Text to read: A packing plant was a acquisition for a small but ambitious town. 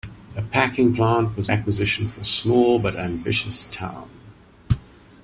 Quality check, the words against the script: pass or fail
pass